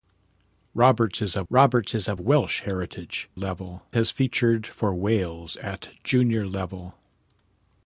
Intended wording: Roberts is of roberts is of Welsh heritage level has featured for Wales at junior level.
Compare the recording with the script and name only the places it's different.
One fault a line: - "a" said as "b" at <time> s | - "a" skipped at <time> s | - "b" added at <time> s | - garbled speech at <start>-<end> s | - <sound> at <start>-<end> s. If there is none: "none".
none